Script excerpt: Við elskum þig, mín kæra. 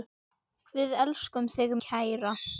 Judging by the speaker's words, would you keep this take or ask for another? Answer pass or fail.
fail